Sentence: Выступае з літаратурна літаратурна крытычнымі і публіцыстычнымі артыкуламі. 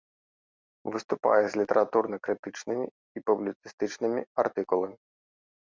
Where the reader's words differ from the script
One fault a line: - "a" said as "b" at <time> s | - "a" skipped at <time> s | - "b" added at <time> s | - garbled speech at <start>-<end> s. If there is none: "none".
- "літаратурна" skipped at 2.2 s